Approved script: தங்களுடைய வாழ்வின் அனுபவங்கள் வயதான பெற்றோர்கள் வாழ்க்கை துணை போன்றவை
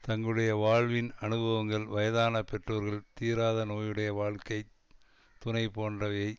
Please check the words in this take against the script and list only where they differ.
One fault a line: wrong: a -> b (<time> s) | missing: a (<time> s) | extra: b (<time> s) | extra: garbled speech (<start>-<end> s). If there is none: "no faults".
extra: தீராத நோயுடைய (3.1 s)